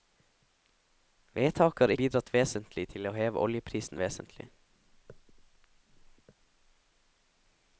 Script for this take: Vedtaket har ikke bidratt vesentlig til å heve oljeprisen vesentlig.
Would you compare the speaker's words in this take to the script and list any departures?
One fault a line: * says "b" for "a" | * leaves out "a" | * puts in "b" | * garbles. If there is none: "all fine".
* leaves out "ikke"